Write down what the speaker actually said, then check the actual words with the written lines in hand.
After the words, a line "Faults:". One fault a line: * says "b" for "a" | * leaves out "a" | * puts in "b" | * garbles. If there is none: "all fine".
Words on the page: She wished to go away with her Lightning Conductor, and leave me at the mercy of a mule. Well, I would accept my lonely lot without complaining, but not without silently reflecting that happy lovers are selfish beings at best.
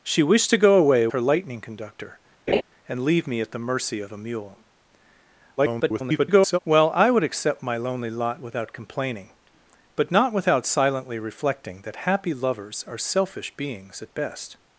She wished to go away her Lightning Conductor, and leave me at the mercy of a mule. [garbled] Well, I would accept my lonely lot without complaining, but not without silently reflecting that happy lovers are selfish beings at best.
Faults:
* leaves out "with"
* garbles